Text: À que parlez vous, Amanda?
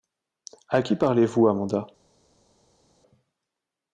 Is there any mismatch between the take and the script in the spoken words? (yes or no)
yes